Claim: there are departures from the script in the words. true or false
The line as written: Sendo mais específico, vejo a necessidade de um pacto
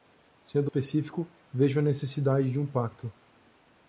true